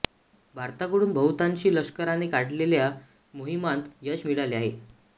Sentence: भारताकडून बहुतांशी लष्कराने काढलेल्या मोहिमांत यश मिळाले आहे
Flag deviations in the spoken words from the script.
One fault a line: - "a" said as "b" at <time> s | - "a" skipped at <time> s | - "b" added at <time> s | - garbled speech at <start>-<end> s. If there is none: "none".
none